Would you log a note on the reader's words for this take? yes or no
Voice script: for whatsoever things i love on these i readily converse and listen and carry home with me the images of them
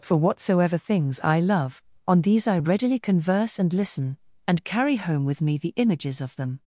no